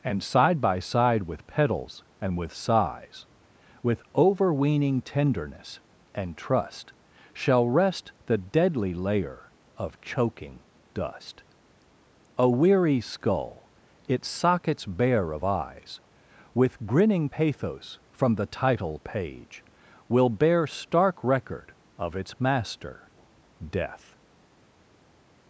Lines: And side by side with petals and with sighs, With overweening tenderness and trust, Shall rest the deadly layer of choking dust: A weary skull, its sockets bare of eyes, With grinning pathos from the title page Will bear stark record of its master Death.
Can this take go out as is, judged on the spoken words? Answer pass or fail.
pass